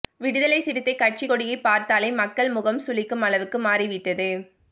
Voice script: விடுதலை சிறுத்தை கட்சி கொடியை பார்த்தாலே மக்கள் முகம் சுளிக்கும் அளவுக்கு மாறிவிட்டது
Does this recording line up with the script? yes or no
yes